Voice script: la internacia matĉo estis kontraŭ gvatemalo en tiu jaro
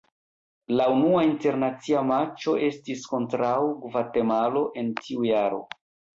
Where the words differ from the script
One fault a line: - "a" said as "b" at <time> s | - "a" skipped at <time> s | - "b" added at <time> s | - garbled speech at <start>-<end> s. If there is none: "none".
- "unua" added at 0.9 s